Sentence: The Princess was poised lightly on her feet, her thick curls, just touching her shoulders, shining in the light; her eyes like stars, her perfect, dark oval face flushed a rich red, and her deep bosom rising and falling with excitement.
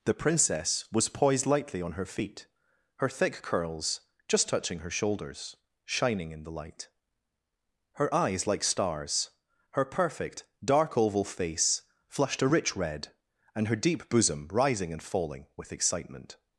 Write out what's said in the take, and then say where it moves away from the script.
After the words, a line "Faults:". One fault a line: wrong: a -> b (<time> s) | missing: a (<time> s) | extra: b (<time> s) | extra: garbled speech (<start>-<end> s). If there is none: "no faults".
The Princess was poised lightly on her feet, her thick curls, just touching her shoulders, shining in the light; her eyes like stars, her perfect, dark oval face flushed a rich red, and her deep bosom rising and falling with excitement.
Faults:
no faults